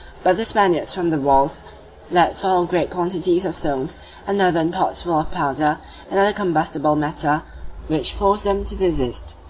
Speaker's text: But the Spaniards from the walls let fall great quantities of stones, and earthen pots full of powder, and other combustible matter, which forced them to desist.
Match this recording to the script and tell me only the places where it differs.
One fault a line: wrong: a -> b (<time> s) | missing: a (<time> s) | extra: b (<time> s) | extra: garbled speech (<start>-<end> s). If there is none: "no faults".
no faults